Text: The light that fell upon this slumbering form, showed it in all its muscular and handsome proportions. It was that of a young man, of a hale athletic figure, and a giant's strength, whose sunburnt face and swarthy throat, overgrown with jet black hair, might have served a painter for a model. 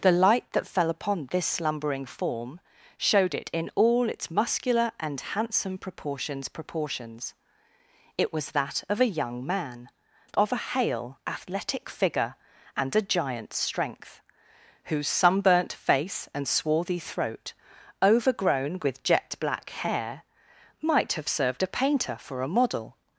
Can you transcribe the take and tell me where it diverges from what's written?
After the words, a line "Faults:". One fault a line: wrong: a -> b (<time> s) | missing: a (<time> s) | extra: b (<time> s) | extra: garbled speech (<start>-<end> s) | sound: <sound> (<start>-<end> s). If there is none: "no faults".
The light that fell upon this slumbering form, showed it in all its muscular and handsome proportions proportions. It was that of a young man, of a hale athletic figure, and a giant's strength, whose sunburnt face and swarthy throat, overgrown with jet black hair, might have served a painter for a model.
Faults:
extra: proportions (6.5 s)